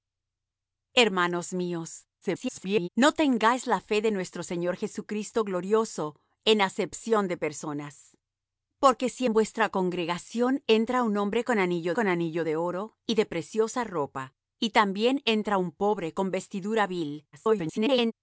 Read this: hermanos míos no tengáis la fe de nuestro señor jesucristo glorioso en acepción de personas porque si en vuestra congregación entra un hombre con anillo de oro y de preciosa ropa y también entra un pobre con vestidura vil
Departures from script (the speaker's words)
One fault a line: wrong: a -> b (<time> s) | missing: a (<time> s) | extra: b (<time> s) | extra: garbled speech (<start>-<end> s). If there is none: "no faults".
extra: garbled speech (2.2-2.9 s)
extra: con anillo (11.9 s)
extra: garbled speech (17.3-18.1 s)